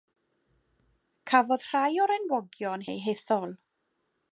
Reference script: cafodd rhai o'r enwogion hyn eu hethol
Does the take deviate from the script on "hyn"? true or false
true